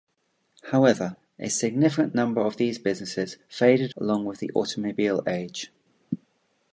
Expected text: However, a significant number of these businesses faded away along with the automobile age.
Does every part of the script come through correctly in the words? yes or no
no